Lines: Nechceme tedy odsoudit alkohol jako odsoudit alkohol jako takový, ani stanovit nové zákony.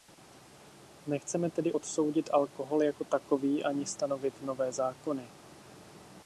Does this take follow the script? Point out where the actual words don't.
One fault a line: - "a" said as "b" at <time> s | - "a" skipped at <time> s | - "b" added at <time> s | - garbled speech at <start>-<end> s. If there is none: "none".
- "odsoudit alkohol jako" skipped at 3.0 s